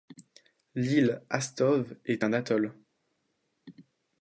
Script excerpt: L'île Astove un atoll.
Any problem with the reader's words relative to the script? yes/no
yes